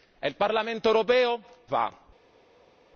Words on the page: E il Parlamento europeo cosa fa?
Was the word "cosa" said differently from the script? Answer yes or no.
yes